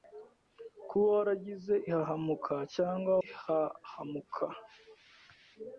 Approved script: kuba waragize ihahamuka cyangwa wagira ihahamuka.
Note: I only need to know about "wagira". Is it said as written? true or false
false